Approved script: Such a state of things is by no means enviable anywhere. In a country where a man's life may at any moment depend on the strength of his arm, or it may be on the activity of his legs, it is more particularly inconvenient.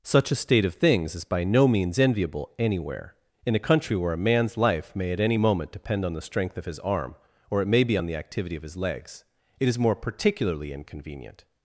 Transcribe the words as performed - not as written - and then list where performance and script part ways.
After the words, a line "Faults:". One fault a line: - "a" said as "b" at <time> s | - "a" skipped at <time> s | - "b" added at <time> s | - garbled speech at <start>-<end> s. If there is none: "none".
Such a state of things is by no means enviable anywhere. In a country where a man's life may at any moment depend on the strength of his arm, or it may be on the activity of his legs, it is more particularly inconvenient.
Faults:
none